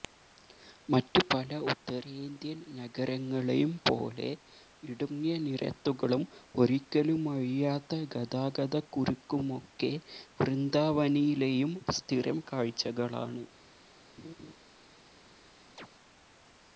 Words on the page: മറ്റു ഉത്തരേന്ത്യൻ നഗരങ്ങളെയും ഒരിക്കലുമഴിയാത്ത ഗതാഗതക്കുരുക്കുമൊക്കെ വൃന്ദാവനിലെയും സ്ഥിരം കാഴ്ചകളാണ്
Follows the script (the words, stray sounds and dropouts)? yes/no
no